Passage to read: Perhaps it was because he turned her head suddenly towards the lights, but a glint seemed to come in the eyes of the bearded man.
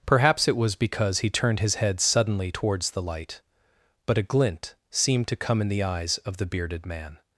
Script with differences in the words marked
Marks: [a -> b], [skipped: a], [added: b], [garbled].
Perhaps it was because he turned [her -> his] head suddenly towards the [lights, -> light] but a glint seemed to come in the eyes of the bearded man.